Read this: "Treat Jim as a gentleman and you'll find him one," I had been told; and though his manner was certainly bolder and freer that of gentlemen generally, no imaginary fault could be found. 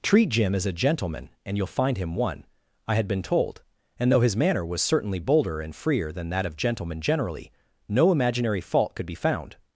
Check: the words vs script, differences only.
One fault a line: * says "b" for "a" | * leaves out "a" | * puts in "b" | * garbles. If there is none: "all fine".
* puts in "than"